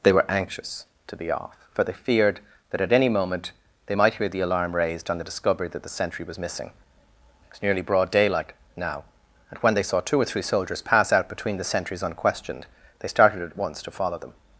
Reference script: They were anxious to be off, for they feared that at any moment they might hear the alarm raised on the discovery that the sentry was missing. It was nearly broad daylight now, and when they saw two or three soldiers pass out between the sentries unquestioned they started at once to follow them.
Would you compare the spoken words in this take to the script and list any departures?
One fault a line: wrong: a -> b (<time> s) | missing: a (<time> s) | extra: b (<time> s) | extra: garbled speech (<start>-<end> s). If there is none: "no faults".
no faults